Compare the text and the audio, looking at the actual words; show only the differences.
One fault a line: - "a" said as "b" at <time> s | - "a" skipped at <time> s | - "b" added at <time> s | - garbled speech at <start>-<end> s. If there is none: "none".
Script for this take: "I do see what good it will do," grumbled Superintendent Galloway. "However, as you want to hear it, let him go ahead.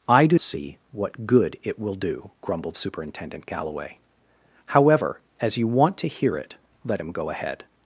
none